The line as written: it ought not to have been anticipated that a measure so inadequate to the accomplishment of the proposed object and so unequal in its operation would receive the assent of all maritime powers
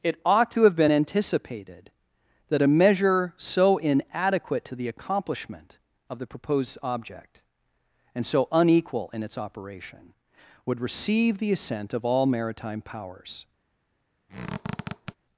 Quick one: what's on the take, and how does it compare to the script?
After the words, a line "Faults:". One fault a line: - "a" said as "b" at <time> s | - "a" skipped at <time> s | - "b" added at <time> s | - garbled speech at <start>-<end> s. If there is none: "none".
it ought to have been anticipated that a measure so inadequate to the accomplishment of the proposed object and so unequal in its operation would receive the assent of all maritime powers
Faults:
- "not" skipped at 0.5 s